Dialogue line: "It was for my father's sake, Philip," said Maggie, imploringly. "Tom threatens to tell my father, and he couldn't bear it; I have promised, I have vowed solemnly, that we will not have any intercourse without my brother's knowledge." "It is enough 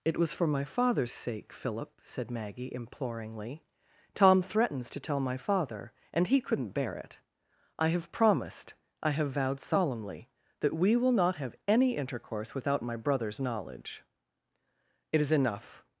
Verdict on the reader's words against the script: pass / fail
pass